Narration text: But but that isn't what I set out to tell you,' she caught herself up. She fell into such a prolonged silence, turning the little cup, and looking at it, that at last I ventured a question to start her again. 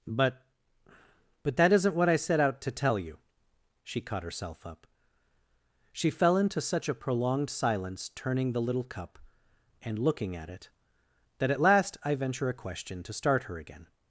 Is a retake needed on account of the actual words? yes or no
yes